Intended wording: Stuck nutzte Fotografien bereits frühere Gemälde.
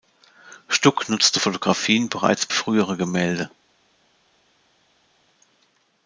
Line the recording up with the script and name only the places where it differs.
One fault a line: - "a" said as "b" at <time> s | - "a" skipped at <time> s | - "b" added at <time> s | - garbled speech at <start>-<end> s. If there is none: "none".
none